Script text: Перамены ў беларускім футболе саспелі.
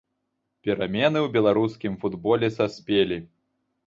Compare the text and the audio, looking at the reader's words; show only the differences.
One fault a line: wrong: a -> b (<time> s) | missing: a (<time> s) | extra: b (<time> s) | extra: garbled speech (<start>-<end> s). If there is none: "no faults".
no faults